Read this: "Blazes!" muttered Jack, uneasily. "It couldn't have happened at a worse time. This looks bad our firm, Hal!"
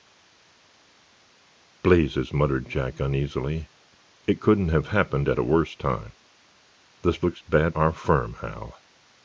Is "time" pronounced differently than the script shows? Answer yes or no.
no